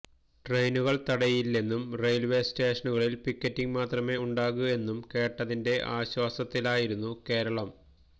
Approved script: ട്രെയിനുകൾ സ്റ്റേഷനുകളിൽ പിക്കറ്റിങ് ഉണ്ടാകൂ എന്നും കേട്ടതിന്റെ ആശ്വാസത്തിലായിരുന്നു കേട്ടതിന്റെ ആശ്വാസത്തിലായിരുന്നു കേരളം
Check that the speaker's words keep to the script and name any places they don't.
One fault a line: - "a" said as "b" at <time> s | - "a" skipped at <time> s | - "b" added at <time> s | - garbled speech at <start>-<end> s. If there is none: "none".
- "തടയില്ലെന്നും റെയിൽവേ" added at 1.1 s
- "മാത്രമേ" added at 3.8 s
- "കേട്ടതിന്റെ ആശ്വാസത്തിലായിരുന്നു" skipped at 7.1 s